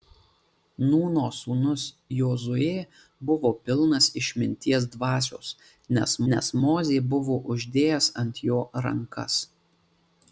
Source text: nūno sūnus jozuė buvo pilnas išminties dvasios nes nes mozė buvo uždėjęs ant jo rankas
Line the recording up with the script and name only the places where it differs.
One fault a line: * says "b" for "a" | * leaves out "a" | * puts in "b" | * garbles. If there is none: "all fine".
all fine